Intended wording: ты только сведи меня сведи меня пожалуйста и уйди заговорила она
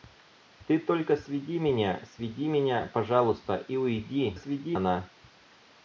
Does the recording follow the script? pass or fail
fail